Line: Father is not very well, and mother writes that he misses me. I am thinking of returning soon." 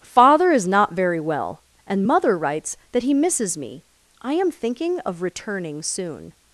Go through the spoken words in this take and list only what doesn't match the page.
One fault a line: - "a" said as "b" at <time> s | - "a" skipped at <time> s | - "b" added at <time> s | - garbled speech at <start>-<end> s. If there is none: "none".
none